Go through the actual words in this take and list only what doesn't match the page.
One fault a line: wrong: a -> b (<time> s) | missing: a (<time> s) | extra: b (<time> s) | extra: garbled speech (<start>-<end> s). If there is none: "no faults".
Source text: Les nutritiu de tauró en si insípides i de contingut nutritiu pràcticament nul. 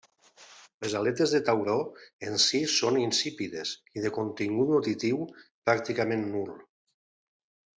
wrong: nutritiu -> aletes (1.0 s)
extra: són (2.8 s)